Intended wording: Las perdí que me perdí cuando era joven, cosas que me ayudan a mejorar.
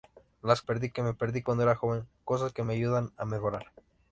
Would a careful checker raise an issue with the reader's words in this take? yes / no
no